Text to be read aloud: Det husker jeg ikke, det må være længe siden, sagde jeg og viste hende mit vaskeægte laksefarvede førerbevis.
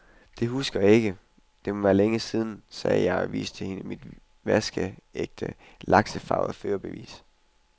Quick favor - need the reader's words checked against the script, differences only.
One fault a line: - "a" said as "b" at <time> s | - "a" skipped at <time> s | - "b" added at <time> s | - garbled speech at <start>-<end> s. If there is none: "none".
none